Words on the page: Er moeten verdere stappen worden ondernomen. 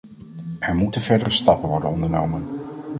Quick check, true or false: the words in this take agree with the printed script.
true